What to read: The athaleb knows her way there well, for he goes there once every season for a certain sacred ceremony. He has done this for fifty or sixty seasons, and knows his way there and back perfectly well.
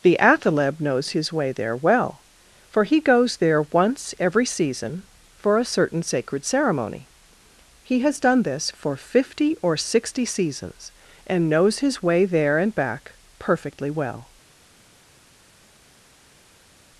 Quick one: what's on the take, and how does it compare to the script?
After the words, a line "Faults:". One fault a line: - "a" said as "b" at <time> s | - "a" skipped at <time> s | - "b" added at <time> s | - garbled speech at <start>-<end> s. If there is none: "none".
The athaleb knows his way there well, for he goes there once every season for a certain sacred ceremony. He has done this for fifty or sixty seasons, and knows his way there and back perfectly well.
Faults:
- "her" said as "his" at 1.1 s